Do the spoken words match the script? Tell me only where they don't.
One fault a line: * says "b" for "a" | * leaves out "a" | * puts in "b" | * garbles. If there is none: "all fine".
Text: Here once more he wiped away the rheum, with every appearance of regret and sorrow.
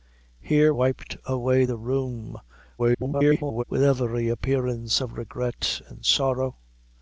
* leaves out "once more he"
* garbles